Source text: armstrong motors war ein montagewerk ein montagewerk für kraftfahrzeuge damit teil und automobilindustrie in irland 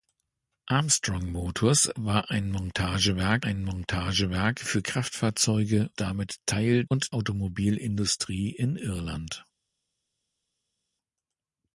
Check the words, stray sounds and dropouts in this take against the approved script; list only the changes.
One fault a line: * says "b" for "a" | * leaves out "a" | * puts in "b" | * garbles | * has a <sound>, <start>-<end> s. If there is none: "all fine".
all fine